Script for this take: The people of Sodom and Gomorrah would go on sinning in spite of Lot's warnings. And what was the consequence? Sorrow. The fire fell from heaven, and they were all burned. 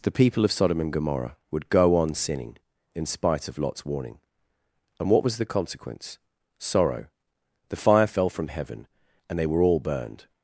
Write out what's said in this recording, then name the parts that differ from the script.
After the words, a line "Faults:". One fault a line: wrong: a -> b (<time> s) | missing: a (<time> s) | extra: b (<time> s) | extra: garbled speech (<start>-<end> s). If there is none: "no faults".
The people of Sodom and Gomorrah would go on sinning in spite of Lot's warning. And what was the consequence? Sorrow. The fire fell from heaven, and they were all burned.
Faults:
wrong: warnings -> warning (3.9 s)